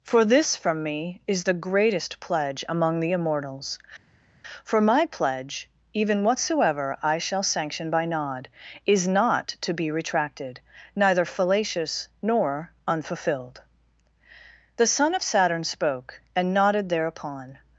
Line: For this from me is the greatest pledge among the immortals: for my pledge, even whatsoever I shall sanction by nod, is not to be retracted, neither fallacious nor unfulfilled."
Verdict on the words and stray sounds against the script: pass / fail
fail